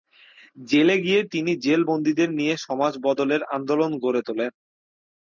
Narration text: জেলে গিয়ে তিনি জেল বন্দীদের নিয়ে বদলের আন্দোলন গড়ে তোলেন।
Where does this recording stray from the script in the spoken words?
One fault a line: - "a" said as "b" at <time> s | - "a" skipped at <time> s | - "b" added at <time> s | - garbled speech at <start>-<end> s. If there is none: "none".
- "সমাজ" added at 2.6 s